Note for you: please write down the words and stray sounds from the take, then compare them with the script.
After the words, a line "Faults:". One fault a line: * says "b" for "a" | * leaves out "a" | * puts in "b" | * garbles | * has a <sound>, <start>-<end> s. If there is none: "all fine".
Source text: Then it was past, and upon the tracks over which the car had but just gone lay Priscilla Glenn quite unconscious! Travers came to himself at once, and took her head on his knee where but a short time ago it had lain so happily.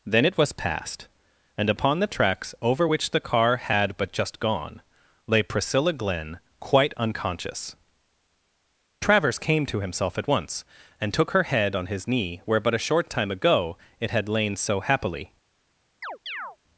Then it was past, and upon the tracks over which the car had but just gone lay Priscilla Glenn quite unconscious! Travers came to himself at once, and took her head on his knee where but a short time ago it had lain so happily.
Faults:
* has a chirp, 16.0-16.6 s